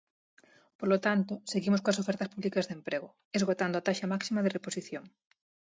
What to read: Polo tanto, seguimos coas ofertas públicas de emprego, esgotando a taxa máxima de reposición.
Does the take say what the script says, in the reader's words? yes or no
yes